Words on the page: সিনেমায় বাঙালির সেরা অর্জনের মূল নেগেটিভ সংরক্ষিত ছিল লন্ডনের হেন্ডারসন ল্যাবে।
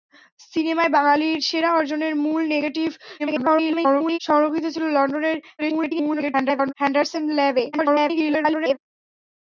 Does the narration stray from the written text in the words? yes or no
yes